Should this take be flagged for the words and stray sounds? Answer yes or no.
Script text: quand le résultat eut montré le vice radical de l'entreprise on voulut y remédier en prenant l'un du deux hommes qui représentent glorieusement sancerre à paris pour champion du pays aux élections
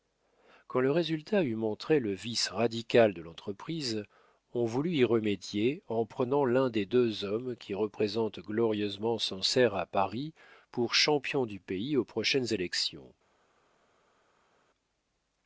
yes